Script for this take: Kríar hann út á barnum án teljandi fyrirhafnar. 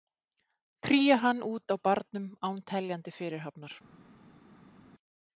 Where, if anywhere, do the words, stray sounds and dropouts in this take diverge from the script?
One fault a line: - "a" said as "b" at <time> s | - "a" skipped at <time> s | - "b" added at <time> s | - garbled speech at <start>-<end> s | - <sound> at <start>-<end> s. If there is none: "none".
none